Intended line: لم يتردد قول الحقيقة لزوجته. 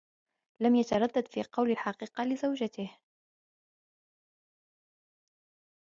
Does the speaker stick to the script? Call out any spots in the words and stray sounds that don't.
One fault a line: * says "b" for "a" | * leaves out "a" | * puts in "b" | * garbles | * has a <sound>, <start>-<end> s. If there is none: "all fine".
* puts in "في"